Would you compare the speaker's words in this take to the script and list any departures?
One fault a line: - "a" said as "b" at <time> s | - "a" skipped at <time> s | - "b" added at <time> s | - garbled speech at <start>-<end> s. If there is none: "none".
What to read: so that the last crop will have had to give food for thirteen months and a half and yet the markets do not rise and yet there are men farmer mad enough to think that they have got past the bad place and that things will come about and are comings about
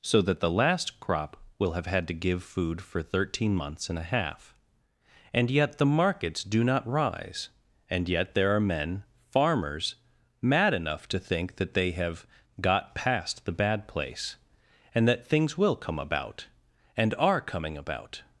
- "farmer" said as "farmers" at 9.3 s
- "comings" said as "coming" at 17.4 s